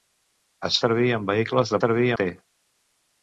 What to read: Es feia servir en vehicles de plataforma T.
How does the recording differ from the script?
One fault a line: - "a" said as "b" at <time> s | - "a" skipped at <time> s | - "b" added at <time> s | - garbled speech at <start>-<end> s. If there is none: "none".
- "feia" skipped at 0.8 s
- "plataforma" said as "servir" at 1.8 s